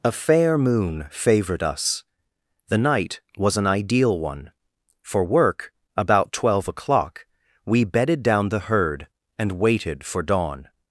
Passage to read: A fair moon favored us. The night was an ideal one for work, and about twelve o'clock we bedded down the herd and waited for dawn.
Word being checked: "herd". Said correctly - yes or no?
yes